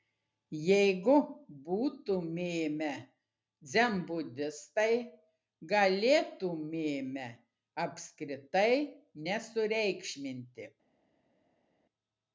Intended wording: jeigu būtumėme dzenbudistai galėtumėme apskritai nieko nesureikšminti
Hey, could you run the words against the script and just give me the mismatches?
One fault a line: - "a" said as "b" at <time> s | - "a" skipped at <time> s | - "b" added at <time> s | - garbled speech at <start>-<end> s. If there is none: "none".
- "nieko" skipped at 8.7 s